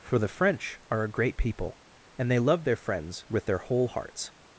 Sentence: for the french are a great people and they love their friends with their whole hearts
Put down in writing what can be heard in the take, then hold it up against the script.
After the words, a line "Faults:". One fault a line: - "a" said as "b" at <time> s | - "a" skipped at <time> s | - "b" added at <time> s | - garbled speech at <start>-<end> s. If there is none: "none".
for the french are a great people and they love their friends with their whole hearts
Faults:
none